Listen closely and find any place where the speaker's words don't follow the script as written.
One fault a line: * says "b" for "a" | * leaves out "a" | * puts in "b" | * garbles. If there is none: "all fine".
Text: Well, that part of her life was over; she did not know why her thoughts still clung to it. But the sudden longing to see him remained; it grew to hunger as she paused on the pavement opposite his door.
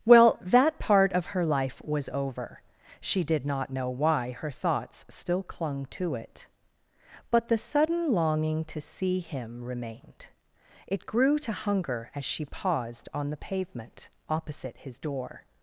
all fine